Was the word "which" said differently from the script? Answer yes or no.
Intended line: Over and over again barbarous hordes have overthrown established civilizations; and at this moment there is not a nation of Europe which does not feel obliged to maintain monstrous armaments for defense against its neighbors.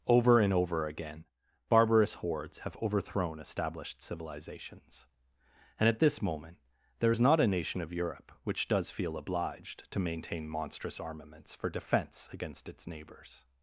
no